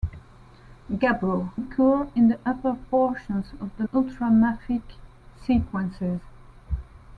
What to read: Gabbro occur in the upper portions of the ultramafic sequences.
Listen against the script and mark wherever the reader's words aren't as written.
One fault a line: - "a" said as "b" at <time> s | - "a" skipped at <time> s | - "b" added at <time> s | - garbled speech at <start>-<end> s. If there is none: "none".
none